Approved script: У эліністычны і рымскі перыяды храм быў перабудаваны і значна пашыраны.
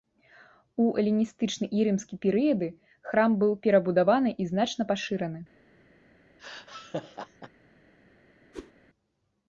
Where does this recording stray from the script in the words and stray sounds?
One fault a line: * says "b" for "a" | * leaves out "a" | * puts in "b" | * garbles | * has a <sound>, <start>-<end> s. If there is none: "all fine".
* has a laugh, 6.4-7.5 s
* has a whoosh, 8.5-8.7 s